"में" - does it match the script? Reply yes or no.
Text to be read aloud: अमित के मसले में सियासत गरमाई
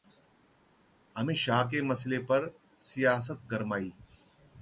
no